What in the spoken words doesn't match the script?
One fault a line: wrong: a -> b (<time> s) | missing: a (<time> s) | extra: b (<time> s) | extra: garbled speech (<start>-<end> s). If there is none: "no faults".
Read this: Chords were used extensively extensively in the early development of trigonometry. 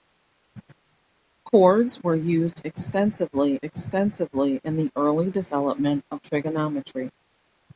no faults